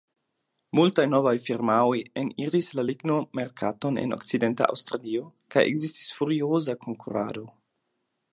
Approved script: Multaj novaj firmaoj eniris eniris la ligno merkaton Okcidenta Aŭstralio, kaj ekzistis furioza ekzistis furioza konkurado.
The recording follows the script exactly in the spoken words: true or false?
false